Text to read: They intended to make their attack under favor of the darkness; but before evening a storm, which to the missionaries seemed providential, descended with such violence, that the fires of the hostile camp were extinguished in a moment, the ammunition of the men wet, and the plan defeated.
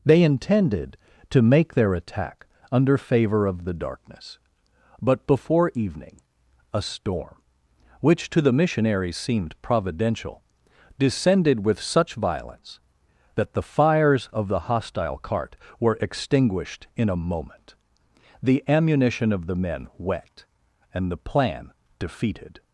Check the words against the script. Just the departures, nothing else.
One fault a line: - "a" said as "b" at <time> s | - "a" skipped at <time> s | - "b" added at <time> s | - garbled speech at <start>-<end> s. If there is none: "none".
- "camp" said as "cart" at 15.2 s